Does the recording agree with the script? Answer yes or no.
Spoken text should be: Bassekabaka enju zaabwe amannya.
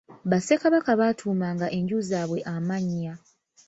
no